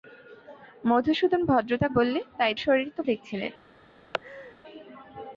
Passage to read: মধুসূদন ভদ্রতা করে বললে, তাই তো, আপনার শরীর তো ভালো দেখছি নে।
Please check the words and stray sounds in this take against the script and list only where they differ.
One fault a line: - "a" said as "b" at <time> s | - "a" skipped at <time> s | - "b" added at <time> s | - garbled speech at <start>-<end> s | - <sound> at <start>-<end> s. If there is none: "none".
- "করে" skipped at 1.9 s
- "তো আপনার" skipped at 2.5 s
- "ভালো" skipped at 3.0 s
- laugh at 4.1-4.6 s